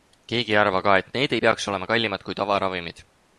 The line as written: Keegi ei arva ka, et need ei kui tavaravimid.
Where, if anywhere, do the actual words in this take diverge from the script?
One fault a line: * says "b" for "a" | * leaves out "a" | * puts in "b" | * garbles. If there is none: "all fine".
* puts in "peaks olema kallimad"